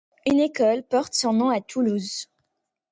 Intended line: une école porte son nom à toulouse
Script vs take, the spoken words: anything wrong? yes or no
no